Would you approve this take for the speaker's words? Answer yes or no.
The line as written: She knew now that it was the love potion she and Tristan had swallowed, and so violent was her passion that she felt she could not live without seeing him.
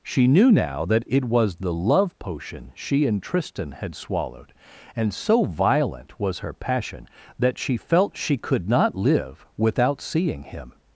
yes